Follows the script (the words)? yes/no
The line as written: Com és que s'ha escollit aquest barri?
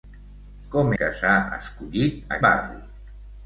no